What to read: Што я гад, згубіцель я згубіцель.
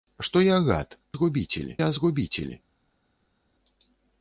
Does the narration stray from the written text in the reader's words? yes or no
no